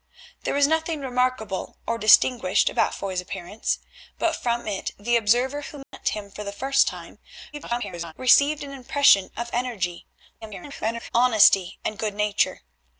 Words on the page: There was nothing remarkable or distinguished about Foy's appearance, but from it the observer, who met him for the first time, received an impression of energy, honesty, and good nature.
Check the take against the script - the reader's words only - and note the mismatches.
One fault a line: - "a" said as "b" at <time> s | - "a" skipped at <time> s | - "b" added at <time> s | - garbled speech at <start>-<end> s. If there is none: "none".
- garbled speech at 7.5-8.1 s
- garbled speech at 10.4-11.1 s